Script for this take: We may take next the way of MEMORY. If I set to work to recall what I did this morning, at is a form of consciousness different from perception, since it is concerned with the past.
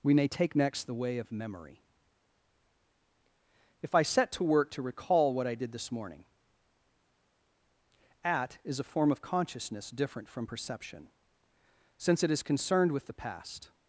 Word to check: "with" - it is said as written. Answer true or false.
true